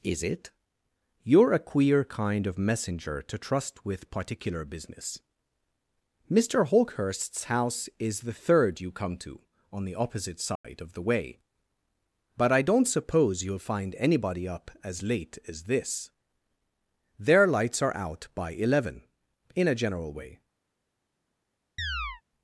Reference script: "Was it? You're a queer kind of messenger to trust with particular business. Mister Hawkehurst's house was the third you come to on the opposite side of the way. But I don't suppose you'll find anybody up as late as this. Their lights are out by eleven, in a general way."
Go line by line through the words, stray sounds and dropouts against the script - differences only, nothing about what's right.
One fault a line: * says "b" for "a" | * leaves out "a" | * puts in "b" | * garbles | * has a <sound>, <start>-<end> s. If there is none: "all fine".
* says "Is" for "Was"
* says "is" for "was"
* has a dropout, 10.6-10.6 s
* has a chirp, 21.8-22.2 s